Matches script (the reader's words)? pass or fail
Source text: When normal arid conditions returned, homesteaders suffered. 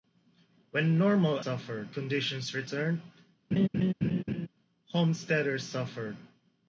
fail